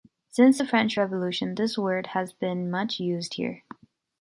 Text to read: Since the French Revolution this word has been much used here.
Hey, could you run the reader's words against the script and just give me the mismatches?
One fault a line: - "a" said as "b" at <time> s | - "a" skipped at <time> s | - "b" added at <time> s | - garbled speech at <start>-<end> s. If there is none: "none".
none